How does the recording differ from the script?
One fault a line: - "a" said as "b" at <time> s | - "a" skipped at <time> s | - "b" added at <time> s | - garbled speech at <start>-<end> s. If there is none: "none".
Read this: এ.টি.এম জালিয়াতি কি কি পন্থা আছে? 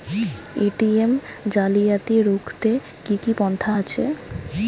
- "রুখতে" added at 2.2 s